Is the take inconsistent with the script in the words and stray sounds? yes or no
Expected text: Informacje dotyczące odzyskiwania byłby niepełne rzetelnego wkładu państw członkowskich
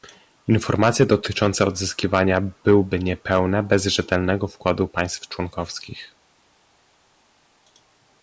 yes